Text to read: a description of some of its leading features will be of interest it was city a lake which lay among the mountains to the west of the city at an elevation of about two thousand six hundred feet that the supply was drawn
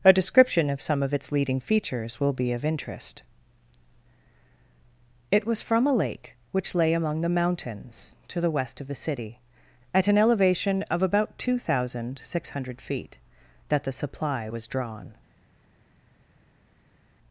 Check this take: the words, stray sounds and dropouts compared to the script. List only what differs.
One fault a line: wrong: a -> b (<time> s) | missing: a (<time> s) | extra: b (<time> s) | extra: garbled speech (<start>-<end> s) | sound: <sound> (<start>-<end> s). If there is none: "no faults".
wrong: city -> from (5.6 s)